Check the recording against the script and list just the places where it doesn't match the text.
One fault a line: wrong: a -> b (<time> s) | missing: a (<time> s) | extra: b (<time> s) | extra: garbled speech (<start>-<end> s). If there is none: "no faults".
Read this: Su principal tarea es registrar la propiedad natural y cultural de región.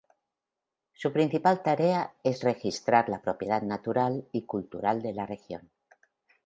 extra: la (5.1 s)